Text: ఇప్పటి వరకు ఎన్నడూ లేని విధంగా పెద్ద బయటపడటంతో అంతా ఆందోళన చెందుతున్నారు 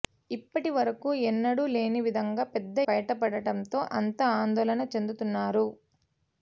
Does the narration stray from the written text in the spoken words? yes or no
no